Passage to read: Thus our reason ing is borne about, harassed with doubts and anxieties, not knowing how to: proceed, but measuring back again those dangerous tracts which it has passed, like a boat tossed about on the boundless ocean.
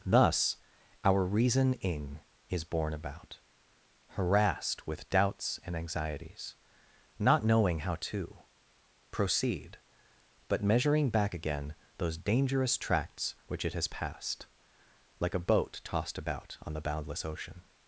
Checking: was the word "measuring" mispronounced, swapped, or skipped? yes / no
no